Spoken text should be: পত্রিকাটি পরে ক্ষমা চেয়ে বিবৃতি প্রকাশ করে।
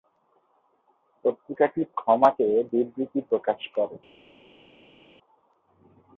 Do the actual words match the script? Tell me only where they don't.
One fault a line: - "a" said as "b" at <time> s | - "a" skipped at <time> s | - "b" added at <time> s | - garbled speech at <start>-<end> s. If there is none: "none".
- "পরে" skipped at 1.8 s